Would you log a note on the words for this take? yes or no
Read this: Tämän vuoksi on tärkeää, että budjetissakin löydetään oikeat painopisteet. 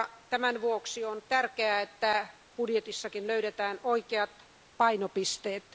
no